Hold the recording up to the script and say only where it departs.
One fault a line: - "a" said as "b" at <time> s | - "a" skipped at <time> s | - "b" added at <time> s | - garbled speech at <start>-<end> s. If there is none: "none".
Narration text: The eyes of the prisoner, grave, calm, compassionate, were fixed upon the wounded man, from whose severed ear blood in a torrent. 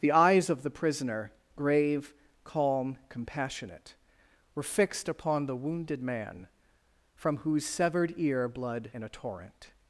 none